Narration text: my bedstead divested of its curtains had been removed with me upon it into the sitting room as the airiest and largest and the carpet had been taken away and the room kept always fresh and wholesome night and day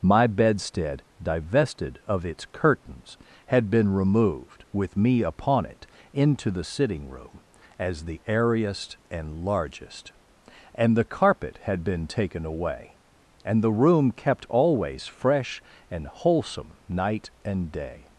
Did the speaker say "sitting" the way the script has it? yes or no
yes